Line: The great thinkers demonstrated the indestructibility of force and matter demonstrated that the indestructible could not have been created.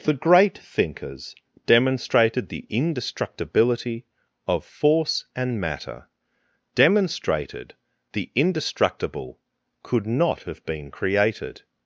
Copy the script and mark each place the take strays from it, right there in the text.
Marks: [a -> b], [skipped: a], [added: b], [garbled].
The great thinkers demonstrated the indestructibility of force and matter demonstrated [skipped: that] the indestructible could not have been created.